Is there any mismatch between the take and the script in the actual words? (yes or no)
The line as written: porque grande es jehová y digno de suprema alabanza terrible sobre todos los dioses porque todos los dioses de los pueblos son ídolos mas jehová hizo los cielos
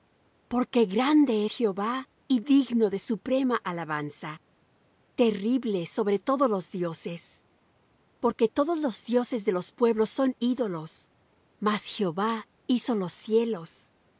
yes